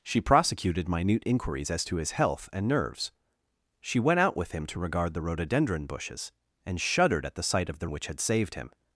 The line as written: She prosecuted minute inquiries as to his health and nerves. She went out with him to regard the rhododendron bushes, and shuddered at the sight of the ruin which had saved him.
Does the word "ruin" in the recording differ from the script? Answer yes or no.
yes